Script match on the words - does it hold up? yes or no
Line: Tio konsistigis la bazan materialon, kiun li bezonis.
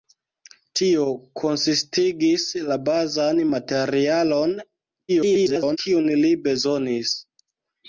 no